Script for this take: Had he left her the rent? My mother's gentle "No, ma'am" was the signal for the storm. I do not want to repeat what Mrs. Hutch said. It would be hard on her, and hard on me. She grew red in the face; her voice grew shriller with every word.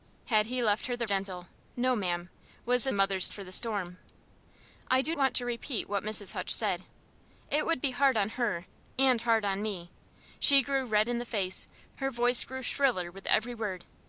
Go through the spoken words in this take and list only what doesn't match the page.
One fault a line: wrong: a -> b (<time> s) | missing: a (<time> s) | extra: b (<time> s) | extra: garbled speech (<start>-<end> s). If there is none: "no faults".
missing: rent My mother's (1.1 s)
wrong: signal -> mother's (2.9 s)
missing: not (5.2 s)